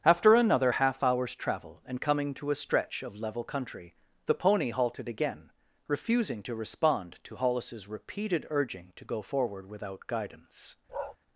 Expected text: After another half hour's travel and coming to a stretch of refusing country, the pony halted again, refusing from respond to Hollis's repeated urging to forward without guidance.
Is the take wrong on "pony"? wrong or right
right